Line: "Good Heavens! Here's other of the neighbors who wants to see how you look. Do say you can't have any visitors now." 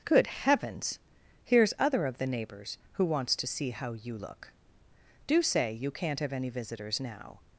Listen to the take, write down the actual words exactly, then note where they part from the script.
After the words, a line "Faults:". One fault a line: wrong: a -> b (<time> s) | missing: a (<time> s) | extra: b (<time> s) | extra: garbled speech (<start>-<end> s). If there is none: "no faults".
"Good Heavens! Here's other of the neighbors who wants to see how you look. Do say you can't have any visitors now."
Faults:
no faults